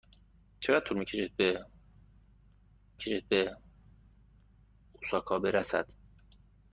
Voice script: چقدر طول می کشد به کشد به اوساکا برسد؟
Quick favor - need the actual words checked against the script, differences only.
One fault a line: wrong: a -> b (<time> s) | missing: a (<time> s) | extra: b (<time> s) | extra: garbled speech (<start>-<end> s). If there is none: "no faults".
no faults